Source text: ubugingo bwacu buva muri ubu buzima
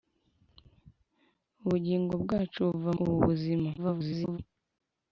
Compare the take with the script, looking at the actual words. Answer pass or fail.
fail